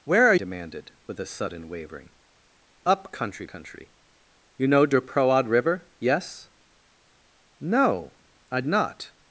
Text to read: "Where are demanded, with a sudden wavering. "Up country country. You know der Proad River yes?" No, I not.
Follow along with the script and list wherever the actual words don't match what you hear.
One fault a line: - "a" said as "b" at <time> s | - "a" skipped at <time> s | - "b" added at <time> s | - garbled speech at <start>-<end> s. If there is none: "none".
none